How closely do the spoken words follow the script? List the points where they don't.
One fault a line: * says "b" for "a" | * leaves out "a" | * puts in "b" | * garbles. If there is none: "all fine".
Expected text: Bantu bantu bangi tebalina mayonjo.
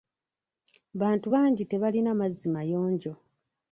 * leaves out "bantu"
* puts in "mazzi"